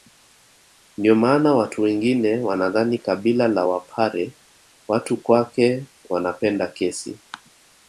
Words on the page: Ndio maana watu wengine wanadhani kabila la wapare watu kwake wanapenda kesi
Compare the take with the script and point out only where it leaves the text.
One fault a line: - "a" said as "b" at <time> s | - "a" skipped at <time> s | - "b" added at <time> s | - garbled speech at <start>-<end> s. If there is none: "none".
none